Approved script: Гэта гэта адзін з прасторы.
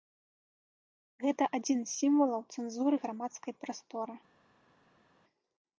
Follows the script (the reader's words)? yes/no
no